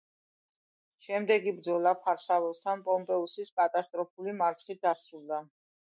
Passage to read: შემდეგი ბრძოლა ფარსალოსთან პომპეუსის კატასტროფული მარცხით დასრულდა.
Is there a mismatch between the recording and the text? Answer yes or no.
no